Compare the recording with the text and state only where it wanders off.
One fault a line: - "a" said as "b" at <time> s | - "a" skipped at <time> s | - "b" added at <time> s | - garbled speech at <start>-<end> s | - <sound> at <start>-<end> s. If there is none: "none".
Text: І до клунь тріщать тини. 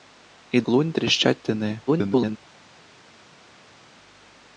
- "до" skipped at 0.6 s
- garbled speech at 1.9-2.4 s